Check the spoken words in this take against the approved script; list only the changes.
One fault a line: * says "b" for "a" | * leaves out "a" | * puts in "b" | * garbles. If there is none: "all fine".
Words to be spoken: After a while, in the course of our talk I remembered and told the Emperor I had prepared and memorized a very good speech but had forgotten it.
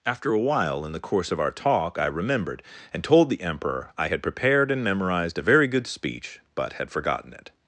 all fine